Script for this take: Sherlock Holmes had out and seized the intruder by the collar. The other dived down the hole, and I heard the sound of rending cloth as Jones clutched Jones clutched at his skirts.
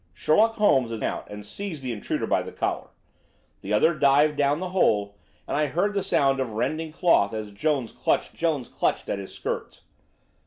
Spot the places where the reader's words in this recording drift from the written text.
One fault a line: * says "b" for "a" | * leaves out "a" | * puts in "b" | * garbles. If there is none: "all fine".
all fine